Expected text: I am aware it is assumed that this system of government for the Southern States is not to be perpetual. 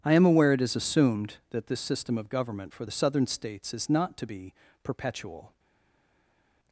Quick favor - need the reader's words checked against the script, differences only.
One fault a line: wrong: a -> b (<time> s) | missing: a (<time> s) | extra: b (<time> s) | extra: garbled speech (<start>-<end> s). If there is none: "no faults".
no faults